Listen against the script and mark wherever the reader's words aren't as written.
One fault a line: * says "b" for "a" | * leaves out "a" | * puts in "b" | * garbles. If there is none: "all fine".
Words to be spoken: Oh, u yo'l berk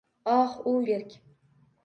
* leaves out "yo'l"